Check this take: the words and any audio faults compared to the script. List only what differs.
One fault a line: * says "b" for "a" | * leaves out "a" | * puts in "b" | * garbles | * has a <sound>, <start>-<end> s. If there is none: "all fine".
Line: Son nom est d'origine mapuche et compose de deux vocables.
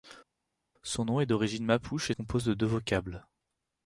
all fine